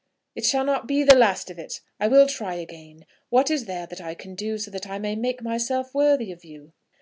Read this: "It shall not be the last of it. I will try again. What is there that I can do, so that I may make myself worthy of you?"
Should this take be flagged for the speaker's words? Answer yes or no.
no